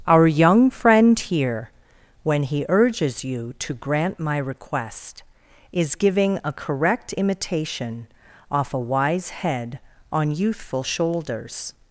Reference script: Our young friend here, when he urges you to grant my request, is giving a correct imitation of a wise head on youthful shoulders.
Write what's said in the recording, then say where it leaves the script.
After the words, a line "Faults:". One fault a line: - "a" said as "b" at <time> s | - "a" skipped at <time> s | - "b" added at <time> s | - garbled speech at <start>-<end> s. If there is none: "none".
Our young friend here, when he urges you to grant my request, is giving a correct imitation off a wise head on youthful shoulders.
Faults:
- "of" said as "off" at 8.5 s